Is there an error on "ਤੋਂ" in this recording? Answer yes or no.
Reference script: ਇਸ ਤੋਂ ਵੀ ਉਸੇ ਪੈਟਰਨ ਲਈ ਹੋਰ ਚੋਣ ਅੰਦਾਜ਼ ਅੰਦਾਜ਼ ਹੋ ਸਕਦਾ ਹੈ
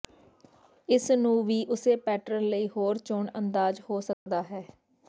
yes